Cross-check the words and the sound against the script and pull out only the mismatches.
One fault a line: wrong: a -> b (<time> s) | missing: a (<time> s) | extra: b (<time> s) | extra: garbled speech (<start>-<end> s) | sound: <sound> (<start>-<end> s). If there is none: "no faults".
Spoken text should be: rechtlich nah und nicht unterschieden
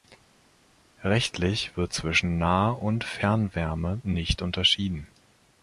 extra: wird zwischen (1.8 s)
extra: fernwärme (3.0 s)